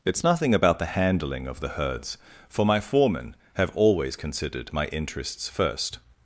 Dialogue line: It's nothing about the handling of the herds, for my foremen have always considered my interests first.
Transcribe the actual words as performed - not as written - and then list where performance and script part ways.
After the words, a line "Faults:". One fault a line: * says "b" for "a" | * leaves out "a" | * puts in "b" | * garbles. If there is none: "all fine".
It's nothing about the handling of the herds, for my foremen have always considered my interests first.
Faults:
all fine